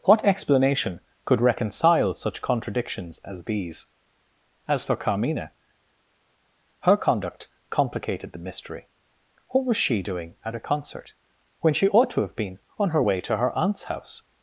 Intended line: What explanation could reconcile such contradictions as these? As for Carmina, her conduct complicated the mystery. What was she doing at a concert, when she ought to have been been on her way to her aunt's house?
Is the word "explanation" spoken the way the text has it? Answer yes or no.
yes